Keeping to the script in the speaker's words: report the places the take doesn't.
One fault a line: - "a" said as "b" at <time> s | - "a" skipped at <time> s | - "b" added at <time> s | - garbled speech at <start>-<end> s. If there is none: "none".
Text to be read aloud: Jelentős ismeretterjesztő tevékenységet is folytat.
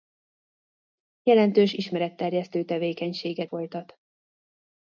- "is" skipped at 3.5 s